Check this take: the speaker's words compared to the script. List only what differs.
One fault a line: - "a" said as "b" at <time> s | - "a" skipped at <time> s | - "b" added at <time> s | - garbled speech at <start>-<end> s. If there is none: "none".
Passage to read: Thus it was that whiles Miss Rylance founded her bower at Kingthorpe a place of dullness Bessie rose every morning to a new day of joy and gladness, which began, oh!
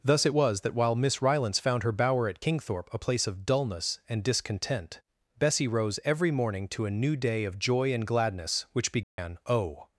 - "whiles" said as "while" at 0.7 s
- "founded" said as "found" at 1.6 s
- "and discontent" added at 4.1 s